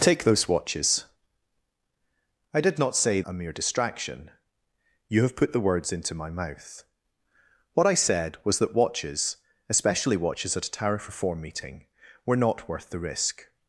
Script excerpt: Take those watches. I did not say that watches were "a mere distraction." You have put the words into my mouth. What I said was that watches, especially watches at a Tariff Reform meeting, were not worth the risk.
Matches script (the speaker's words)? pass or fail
fail